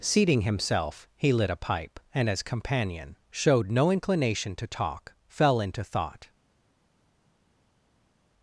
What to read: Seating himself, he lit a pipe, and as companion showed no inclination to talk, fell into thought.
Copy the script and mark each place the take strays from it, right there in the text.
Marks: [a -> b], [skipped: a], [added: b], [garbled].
Seating himself, he lit a pipe, and as companion showed no inclination to talk, fell into thought.